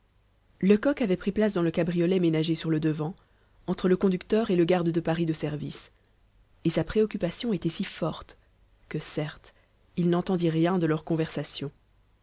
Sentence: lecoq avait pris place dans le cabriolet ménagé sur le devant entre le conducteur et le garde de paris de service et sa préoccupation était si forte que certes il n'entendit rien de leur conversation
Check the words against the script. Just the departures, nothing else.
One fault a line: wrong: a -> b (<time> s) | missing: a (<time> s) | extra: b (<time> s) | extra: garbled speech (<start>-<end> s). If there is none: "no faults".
no faults